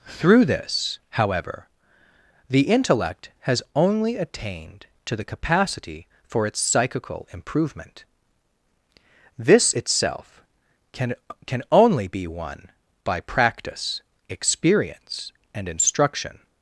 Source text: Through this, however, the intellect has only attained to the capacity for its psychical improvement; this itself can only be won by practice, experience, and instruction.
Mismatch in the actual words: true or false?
true